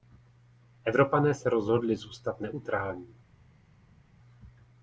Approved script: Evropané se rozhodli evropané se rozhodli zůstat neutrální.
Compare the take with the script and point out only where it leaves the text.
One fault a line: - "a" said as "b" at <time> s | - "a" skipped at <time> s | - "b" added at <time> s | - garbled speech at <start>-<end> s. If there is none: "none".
- "evropané se rozhodli" skipped at 1.9 s